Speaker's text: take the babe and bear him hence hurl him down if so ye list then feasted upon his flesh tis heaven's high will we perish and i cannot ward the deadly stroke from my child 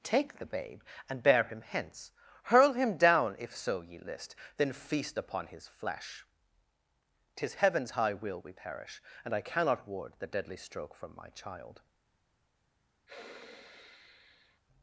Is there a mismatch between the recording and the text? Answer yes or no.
yes